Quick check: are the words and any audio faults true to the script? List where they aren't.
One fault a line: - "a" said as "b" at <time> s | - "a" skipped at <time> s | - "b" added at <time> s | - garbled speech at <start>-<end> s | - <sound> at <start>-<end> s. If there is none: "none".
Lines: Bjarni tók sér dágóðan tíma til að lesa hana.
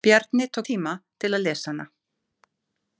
- "sér dágóðan" skipped at 0.7 s